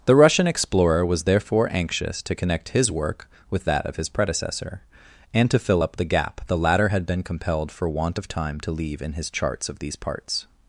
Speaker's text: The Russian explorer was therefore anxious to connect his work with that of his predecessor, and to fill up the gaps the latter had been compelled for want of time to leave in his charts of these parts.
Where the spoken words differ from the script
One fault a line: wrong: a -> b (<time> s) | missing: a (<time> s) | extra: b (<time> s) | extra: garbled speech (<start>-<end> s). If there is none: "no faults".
wrong: gaps -> gap (6.0 s)